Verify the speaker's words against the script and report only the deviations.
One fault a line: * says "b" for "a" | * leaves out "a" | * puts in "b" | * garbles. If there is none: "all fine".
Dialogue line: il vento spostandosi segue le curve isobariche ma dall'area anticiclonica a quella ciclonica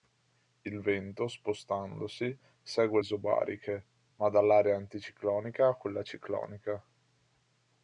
* leaves out "le curve"